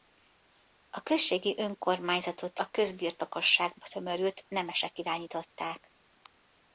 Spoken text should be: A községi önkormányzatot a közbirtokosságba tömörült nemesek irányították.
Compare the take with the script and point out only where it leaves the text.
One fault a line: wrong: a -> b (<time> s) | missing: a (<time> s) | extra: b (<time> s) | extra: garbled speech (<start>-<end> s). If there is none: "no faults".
no faults